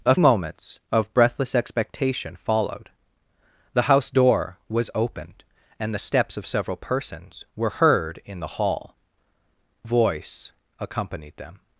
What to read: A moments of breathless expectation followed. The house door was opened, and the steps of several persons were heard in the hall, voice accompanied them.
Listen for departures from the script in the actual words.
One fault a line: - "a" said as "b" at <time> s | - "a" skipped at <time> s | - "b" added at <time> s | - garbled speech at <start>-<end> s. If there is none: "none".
none